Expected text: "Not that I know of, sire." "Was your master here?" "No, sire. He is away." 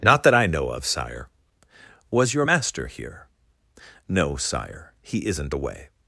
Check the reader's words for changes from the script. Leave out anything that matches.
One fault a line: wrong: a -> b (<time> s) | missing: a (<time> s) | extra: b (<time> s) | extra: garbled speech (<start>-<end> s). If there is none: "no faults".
wrong: is -> isn't (5.3 s)